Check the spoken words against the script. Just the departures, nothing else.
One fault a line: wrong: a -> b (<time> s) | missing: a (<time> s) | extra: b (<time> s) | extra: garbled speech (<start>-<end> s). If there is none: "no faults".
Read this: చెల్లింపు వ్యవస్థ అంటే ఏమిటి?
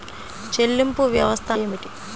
missing: అంటే (1.5 s)